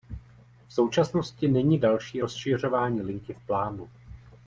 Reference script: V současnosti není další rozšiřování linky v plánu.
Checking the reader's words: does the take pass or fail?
pass